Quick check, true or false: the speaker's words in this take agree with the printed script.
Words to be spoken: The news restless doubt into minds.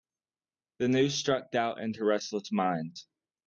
false